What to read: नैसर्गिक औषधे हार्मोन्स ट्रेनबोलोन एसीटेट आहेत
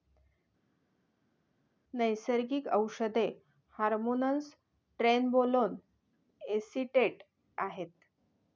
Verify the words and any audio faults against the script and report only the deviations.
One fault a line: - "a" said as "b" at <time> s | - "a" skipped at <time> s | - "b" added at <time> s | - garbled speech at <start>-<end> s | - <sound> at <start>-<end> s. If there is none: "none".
none